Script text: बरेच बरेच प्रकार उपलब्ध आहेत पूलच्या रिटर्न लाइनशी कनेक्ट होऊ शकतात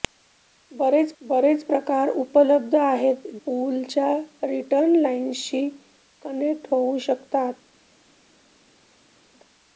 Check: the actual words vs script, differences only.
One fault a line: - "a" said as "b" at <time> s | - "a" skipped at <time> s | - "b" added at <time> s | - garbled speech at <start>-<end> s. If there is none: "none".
none